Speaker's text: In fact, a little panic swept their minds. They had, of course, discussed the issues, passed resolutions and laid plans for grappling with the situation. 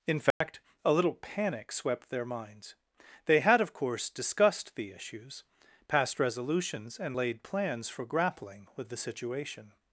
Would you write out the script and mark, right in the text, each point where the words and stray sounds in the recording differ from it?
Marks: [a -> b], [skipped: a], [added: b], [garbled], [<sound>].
In fact, [dropout] a little panic swept their minds. They had, of course, discussed the issues, passed resolutions and laid plans for grappling with the situation.